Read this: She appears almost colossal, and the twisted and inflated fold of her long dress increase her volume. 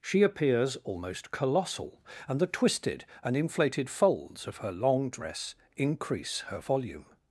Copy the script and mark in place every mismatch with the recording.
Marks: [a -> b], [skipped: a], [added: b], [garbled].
She appears almost colossal, and the twisted and inflated [fold -> folds] of her long dress increase her volume.